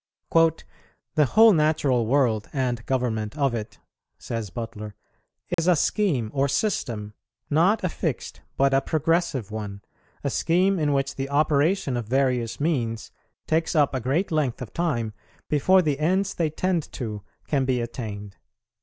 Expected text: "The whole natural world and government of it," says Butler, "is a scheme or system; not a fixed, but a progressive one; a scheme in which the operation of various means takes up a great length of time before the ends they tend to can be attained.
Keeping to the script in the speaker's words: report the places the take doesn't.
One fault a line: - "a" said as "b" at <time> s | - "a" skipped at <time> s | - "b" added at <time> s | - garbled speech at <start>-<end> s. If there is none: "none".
none